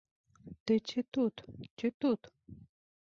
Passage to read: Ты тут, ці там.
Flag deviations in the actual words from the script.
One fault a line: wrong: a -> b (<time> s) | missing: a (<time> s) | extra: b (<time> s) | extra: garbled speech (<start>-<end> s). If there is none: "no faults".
extra: ці (0.9 s)
wrong: там -> тут (2.0 s)